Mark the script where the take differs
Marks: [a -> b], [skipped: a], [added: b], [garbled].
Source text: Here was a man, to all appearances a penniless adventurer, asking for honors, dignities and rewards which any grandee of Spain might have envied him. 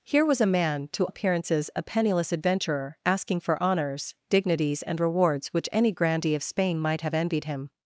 Here was a man, to [skipped: all] appearances a penniless adventurer, asking for honors, dignities and rewards which any grandee of Spain might have envied him.